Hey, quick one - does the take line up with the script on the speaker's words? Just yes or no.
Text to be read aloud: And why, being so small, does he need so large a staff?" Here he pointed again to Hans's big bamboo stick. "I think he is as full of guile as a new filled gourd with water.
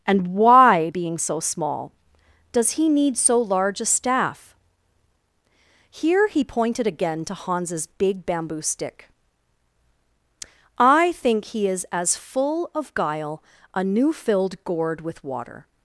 no